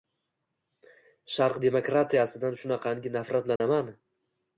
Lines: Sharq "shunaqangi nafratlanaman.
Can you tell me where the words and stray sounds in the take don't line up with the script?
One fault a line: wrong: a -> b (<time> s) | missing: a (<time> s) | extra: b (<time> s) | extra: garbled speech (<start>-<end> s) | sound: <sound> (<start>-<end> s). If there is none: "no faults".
extra: demokratiya"sidan (1.6 s)
sound: dropout (3.6-3.6 s)